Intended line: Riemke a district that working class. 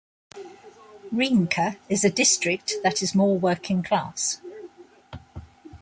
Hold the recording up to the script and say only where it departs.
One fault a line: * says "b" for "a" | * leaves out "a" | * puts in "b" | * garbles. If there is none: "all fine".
* puts in "is"
* puts in "is more"